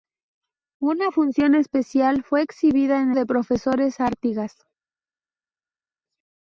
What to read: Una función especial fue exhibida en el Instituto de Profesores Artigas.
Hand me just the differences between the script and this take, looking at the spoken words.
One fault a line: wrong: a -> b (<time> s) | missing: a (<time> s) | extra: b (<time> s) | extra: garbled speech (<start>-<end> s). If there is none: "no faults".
missing: el Instituto (3.1 s)